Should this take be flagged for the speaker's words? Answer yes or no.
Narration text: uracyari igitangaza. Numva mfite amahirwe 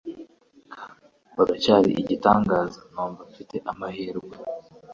no